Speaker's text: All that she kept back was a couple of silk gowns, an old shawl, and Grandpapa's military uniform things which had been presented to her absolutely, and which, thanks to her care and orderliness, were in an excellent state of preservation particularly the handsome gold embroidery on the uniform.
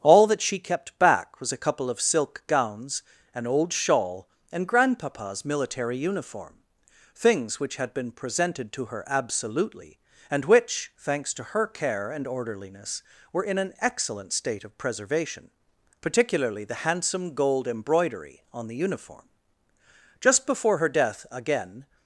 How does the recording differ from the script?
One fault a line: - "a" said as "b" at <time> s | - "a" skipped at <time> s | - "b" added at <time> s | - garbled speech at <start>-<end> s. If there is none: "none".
- "Just before her death again" added at 20.2 s